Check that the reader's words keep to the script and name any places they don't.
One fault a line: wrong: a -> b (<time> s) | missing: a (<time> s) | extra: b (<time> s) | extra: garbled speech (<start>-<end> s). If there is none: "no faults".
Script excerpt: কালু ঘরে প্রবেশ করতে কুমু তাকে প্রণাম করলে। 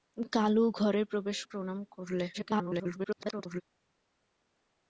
missing: করতে কুমু তাকে (1.4 s)
extra: garbled speech (2.3-3.6 s)